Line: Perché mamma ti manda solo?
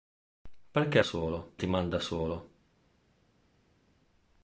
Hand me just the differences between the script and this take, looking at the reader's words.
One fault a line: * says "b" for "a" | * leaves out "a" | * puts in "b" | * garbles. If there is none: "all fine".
* says "solo" for "mamma"